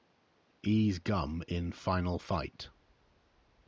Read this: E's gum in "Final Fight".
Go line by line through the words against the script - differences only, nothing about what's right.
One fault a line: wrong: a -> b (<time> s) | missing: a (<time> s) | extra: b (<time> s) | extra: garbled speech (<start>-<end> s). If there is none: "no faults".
no faults